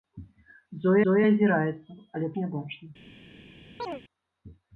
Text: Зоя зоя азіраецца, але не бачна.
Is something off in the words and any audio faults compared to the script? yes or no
yes